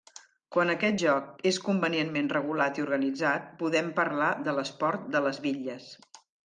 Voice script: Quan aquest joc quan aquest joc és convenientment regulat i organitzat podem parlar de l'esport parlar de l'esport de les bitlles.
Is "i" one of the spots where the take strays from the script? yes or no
no